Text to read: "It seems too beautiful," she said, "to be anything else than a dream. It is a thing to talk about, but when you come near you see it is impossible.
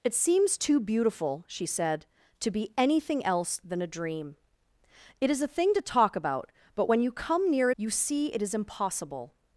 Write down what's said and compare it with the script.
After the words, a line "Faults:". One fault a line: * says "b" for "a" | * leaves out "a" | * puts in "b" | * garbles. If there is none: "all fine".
"It seems too beautiful," she said, "to be anything else than a dream. It is a thing to talk about, but when you come near you see it is impossible.
Faults:
all fine